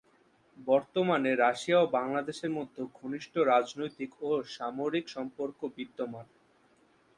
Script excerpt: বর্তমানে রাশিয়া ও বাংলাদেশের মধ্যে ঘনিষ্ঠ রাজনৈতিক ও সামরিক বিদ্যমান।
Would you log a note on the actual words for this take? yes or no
yes